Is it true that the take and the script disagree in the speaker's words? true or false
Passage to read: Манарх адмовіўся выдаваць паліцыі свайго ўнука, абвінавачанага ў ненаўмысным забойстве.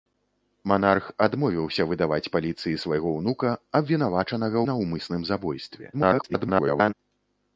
true